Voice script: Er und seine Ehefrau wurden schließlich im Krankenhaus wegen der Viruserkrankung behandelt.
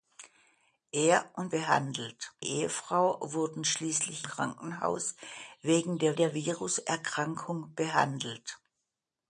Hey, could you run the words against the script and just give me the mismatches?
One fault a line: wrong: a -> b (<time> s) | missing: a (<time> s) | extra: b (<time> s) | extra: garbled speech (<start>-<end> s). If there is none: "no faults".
wrong: seine -> behandelt (1.5 s)
missing: im (4.2 s)
extra: der (6.1 s)